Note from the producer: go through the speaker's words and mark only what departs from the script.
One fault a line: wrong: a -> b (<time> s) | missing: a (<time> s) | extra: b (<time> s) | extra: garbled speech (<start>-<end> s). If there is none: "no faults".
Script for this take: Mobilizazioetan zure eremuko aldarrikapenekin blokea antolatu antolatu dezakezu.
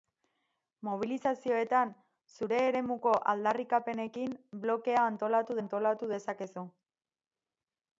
no faults